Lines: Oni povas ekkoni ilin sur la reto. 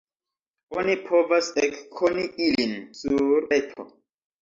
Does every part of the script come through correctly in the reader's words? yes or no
no